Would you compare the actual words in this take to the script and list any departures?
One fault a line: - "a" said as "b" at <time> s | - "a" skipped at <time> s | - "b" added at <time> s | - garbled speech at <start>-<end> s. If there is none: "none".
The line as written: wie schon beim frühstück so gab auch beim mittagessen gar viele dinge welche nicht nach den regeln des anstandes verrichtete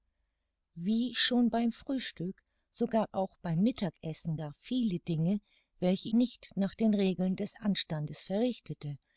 none